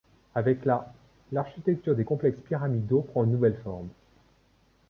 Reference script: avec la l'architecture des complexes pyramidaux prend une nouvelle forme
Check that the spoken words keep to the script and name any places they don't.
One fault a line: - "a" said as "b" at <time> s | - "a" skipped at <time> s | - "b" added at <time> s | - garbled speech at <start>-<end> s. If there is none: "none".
none